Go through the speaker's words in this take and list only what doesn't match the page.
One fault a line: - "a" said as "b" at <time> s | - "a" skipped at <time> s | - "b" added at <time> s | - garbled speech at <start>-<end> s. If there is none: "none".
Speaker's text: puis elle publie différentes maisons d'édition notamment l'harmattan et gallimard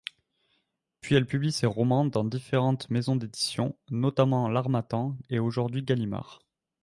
- "ses romans dans" added at 1.5 s
- "aujourd'hui" added at 5.4 s